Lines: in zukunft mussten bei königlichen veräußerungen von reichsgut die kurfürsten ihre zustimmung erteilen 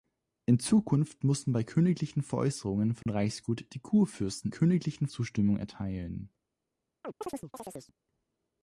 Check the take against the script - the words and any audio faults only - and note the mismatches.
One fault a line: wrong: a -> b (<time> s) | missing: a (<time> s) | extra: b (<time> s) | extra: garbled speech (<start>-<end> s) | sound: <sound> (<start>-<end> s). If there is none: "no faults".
sound: dropout (3.0-3.1 s)
wrong: ihre -> königlichen (4.5 s)
sound: chirp (7.0-7.9 s)